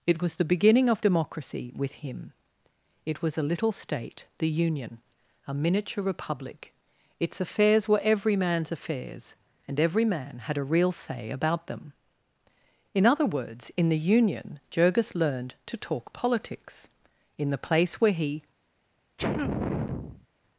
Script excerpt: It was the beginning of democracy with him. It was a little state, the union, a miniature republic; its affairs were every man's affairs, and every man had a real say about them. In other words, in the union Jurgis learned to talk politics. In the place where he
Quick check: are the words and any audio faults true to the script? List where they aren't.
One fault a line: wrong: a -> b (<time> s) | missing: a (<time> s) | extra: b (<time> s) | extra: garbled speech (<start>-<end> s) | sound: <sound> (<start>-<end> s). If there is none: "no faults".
sound: sneeze (19.2-20.3 s)